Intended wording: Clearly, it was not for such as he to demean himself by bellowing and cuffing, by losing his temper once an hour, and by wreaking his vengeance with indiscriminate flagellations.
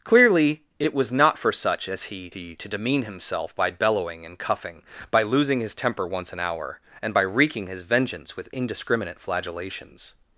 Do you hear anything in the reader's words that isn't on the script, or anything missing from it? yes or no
yes